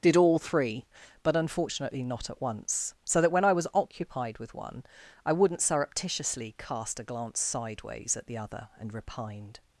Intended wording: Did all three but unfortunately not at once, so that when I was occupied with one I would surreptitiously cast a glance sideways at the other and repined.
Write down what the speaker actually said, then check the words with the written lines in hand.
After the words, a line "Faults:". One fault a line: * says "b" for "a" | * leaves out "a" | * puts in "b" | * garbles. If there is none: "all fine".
Did all three but unfortunately not at once, so that when I was occupied with one I wouldn't surreptitiously cast a glance sideways at the other and repined.
Faults:
* says "wouldn't" for "would"